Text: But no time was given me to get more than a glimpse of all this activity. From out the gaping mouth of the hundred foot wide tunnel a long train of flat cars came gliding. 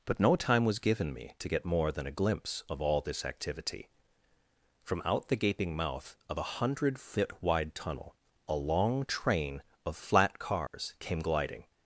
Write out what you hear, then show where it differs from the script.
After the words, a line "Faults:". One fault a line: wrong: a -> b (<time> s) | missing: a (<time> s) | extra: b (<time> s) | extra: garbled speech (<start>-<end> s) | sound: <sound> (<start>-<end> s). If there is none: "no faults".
But no time was given me to get more than a glimpse of all this activity. From out the gaping mouth of a hundred foot wide tunnel a long train of flat cars came gliding.
Faults:
wrong: the -> a (6.4 s)
sound: dropout (10.7-10.7 s)